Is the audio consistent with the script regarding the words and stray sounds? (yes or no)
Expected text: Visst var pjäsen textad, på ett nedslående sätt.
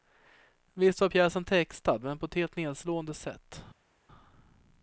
no